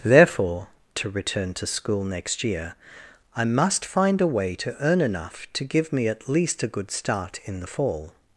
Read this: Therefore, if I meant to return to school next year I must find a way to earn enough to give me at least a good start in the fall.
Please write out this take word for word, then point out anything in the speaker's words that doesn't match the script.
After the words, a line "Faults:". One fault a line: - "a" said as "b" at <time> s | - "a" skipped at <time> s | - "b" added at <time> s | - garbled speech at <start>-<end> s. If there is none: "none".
Therefore, to return to school next year I must find a way to earn enough to give me at least a good start in the fall.
Faults:
- "if I meant" skipped at 0.7 s